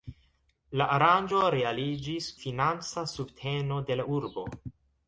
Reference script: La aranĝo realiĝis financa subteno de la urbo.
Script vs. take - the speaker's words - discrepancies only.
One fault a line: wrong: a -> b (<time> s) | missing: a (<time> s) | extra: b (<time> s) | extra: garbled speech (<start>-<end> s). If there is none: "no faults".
no faults